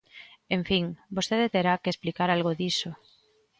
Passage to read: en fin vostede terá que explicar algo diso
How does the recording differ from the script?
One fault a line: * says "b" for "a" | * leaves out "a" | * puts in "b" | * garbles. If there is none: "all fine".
all fine